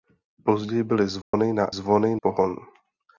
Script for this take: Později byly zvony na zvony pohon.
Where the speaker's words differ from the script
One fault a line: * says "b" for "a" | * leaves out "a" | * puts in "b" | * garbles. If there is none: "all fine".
all fine